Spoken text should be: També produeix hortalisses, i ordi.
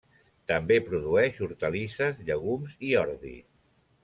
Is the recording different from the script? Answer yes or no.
yes